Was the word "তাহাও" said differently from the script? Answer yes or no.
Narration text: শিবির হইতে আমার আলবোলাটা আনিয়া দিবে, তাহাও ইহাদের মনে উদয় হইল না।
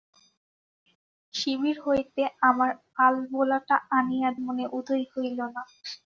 yes